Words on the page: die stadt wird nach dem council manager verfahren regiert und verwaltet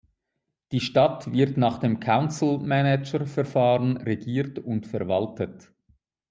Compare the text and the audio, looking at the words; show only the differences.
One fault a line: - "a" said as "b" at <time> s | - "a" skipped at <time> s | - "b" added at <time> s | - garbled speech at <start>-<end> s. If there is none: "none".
none